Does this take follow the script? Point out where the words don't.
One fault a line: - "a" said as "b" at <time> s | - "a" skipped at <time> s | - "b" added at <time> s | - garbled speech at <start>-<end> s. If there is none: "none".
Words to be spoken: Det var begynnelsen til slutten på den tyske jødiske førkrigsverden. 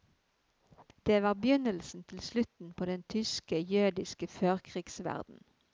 none